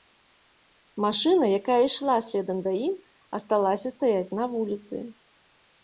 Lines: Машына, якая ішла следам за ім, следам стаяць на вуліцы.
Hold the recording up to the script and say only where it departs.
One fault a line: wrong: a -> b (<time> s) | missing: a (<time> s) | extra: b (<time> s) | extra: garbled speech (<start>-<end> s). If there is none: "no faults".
wrong: следам -> асталася (3.4 s)